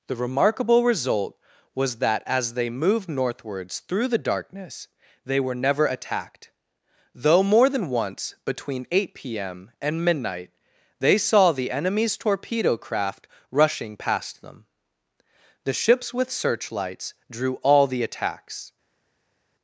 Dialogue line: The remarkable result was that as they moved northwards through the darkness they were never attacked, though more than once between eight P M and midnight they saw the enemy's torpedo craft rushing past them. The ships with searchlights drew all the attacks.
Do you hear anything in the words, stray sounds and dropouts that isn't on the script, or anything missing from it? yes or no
no